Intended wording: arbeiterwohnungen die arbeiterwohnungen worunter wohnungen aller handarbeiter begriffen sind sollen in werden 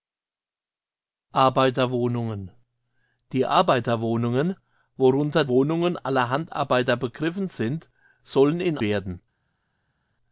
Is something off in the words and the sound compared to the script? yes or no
no